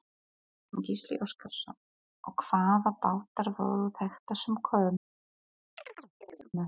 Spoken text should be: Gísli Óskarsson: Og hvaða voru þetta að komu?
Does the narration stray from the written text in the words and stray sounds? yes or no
yes